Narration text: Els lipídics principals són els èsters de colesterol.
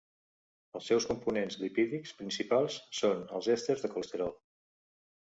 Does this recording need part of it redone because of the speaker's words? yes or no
yes